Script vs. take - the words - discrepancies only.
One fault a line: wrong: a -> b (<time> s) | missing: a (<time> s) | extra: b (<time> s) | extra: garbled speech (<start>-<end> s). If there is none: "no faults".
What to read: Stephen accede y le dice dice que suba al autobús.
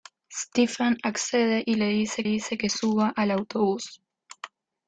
no faults